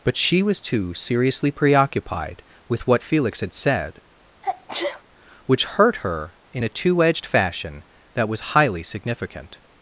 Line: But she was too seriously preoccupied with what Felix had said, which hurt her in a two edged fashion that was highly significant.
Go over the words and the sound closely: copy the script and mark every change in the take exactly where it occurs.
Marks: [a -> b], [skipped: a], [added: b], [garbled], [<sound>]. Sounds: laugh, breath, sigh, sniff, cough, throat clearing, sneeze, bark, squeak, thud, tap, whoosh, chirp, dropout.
But she was too seriously preoccupied with what Felix had said, [sneeze] which hurt her in a two edged fashion that was highly significant.